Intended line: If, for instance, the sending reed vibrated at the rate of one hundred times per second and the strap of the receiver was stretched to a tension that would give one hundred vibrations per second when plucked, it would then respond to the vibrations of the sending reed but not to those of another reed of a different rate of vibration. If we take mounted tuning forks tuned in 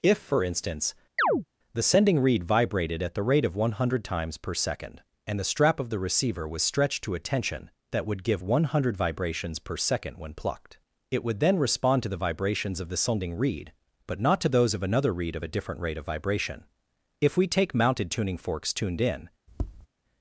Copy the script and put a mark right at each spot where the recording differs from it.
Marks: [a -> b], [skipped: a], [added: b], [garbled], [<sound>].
If, for instance, [chirp] the sending reed vibrated at the rate of one hundred times per second and the strap of the receiver was stretched to a tension that would give one hundred vibrations per second when plucked, it would then respond to the vibrations of the sending reed but not to those of another reed of a different rate of vibration. If we take mounted tuning forks tuned in [tap]